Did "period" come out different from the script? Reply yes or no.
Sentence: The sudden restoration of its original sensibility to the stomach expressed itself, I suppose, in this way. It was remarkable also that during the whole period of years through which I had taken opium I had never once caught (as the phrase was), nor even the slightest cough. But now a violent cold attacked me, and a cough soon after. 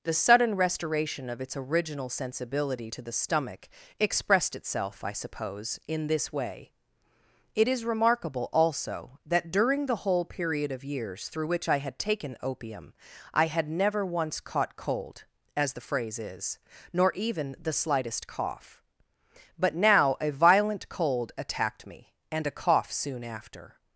no